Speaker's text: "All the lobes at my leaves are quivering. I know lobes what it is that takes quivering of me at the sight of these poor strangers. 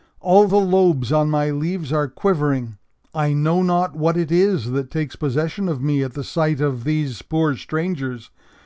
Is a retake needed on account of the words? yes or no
yes